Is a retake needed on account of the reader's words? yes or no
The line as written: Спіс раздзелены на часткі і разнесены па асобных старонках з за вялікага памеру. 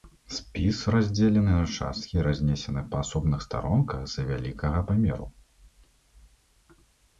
no